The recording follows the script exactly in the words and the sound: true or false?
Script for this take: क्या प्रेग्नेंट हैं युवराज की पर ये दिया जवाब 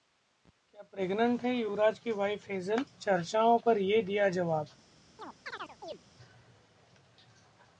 false